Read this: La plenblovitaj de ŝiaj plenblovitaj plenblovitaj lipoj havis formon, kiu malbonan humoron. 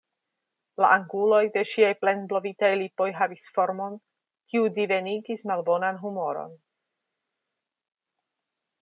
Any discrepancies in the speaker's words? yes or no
yes